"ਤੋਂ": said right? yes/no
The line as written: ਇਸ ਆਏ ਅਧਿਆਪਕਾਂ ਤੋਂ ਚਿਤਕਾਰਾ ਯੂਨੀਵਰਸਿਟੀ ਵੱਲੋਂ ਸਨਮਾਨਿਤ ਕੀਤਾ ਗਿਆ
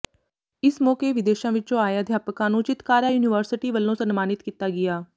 no